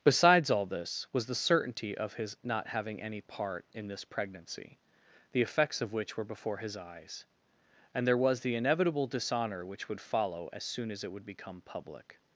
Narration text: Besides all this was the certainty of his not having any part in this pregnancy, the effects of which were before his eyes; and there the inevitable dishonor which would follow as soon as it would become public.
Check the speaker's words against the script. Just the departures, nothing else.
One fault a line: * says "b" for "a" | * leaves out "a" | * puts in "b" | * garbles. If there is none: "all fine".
* puts in "was"